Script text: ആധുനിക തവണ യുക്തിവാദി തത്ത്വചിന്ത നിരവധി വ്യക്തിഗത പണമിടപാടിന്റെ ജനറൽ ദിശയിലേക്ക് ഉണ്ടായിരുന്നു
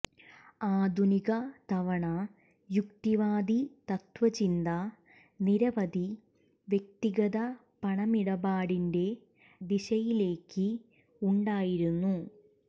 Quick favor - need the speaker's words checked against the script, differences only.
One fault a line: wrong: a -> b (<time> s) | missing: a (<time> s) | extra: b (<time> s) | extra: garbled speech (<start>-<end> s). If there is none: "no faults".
missing: ജനറൽ (9.1 s)